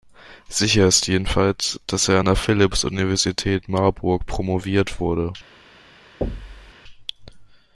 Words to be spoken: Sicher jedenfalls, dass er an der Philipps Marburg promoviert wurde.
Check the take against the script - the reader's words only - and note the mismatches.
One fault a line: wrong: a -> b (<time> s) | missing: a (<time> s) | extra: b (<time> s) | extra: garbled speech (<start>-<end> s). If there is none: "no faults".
extra: ist (0.9 s)
extra: Universität (2.9 s)